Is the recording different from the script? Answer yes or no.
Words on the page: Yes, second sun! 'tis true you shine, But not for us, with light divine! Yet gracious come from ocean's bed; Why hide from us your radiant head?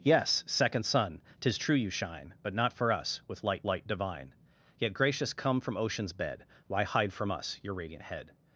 yes